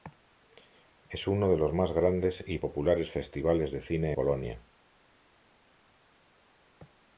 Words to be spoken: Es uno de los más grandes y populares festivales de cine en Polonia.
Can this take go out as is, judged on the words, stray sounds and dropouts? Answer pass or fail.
fail